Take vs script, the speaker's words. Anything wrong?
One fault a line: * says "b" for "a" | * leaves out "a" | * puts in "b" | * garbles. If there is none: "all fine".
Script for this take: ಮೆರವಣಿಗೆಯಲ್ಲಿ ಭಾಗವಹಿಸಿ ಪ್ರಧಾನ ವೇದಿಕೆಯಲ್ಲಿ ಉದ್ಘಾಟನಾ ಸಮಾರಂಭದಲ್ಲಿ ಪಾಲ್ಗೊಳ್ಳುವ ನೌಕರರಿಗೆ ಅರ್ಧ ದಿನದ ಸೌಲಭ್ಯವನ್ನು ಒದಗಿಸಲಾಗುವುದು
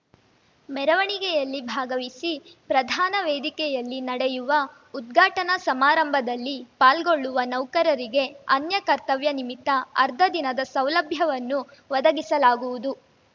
* puts in "ನಡೆಯುವ"
* puts in "ಅನ್ಯ ಕರ್ತವ್ಯ ನಿಮಿತ್ತ"